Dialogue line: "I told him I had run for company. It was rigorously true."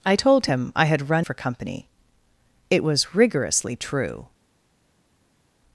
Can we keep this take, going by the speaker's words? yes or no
yes